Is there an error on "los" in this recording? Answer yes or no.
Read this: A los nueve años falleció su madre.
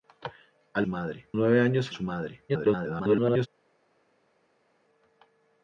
yes